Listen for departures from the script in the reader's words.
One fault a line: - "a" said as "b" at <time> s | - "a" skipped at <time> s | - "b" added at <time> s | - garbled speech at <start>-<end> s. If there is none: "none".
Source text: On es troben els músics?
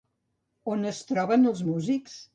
none